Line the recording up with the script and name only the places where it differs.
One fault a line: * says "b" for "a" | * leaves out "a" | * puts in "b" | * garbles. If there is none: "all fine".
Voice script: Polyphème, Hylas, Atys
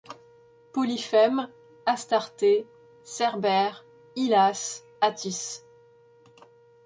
* puts in "Astarté Cerbère"